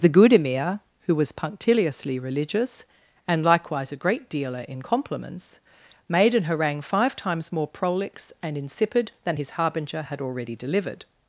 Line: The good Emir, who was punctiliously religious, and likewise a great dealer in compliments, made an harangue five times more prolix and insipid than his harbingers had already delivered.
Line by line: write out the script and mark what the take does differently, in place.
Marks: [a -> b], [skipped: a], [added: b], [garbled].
The good Emir, who was punctiliously religious, and likewise a great dealer in compliments, made an harangue five times more prolix and insipid than his [harbingers -> harbinger] had already delivered.